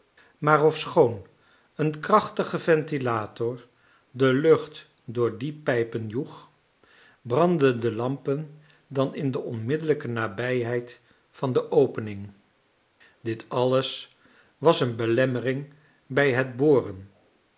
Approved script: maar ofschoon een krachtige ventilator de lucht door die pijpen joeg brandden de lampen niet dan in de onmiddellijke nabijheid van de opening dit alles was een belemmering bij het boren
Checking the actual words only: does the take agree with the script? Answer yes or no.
no